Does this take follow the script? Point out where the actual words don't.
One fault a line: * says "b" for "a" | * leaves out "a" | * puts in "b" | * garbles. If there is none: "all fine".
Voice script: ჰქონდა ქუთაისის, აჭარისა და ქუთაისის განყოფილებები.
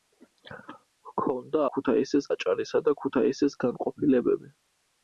all fine